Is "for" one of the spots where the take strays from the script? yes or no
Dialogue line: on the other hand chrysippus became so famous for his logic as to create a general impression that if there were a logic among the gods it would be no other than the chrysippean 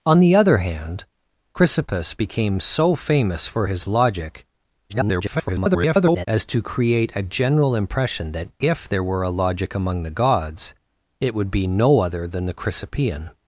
no